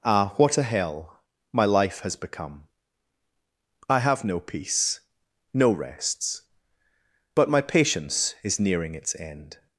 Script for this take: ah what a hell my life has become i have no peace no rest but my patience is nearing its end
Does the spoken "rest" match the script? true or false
false